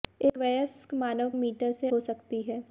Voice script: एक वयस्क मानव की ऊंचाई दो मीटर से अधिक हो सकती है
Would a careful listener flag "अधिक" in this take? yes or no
yes